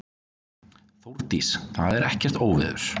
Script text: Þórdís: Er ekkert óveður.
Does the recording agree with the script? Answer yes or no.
no